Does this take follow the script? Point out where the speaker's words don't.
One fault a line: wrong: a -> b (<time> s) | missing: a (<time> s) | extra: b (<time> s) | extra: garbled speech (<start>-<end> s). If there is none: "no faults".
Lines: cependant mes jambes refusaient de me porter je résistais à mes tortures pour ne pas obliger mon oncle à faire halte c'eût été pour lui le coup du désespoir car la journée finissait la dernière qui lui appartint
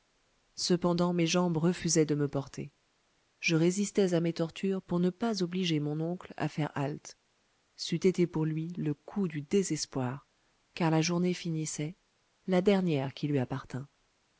no faults